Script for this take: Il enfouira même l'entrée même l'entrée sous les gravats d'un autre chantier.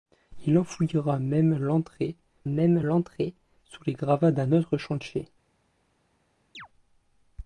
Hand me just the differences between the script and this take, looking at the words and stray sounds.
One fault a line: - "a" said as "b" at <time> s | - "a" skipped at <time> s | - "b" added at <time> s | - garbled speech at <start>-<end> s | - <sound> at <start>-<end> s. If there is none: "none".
- chirp at 6.5-6.7 s